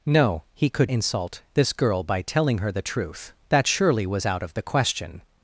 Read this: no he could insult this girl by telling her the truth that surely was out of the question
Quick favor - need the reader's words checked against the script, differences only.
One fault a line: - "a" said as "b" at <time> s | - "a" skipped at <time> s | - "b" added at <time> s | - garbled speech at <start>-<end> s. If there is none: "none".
none